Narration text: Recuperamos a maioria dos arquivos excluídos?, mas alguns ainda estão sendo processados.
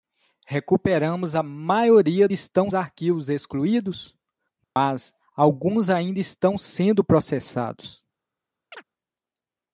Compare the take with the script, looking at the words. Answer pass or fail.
fail